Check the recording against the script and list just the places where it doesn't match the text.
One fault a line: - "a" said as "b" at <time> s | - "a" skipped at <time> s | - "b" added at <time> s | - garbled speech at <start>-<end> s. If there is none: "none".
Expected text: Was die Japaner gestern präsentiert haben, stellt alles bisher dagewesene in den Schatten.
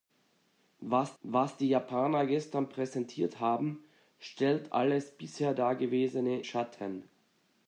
- "was" added at 1.2 s
- "in den" skipped at 6.4 s